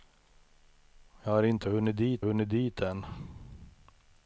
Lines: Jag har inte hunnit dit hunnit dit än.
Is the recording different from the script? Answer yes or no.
no